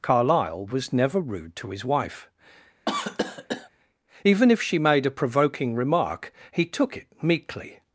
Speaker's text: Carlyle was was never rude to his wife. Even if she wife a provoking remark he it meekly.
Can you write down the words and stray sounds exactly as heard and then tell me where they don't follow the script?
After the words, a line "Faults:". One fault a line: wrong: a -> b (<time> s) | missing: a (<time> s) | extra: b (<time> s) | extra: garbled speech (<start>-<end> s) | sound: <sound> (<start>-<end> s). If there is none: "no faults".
Carlyle was never rude to his wife. Even if she made a provoking remark he took it meekly.
Faults:
missing: was (0.9 s)
sound: cough (2.9-3.7 s)
wrong: wife -> made (4.8 s)
extra: took (6.7 s)